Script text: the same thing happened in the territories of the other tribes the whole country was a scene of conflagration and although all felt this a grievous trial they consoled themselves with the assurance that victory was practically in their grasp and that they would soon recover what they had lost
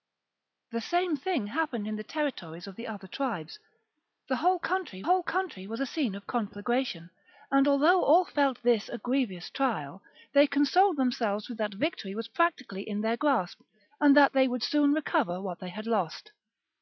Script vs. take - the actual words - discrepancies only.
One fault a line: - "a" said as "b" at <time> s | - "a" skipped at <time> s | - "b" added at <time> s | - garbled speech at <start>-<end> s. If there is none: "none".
- "whole country" added at 5.0 s
- "the assurance" skipped at 11.6 s